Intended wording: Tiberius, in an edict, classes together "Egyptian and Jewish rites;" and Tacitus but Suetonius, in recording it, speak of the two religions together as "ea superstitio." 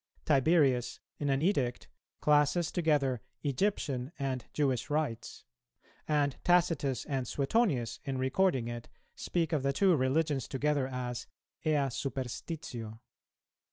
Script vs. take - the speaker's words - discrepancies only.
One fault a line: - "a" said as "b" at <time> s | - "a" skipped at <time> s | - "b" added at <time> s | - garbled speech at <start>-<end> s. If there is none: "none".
- "but" said as "and" at 7.0 s